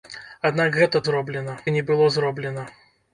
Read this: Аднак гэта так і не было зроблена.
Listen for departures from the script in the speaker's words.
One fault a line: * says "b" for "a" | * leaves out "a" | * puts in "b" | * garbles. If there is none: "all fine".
* says "зроблена" for "так"